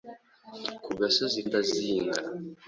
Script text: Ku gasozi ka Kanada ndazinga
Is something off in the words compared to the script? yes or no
yes